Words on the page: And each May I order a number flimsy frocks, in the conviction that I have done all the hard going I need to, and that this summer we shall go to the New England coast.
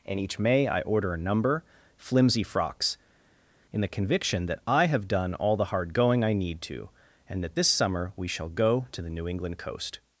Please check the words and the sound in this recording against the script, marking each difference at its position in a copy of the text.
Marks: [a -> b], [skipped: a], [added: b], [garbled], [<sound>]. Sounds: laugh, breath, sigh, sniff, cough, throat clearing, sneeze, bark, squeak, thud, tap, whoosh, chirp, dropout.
And each May I order a number flimsy frocks, in the conviction that I have done all the hard going I need to, and that this summer we shall go to the New England coast.